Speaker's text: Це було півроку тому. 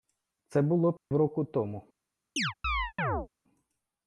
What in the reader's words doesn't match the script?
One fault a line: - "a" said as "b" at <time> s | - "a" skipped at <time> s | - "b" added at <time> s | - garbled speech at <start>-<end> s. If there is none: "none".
none